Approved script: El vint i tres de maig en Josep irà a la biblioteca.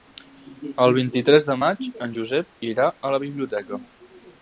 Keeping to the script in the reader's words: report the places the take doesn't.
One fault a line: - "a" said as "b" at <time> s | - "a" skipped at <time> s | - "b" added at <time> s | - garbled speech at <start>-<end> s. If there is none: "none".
none